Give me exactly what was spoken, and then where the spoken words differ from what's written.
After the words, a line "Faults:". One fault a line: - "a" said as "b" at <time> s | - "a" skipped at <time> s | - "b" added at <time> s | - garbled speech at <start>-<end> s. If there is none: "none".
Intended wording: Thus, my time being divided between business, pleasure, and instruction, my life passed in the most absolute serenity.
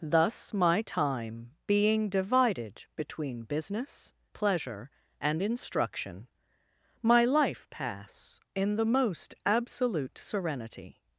Thus, my time being divided between business, pleasure, and instruction, my life pass in the most absolute serenity.
Faults:
- "passed" said as "pass" at 7.7 s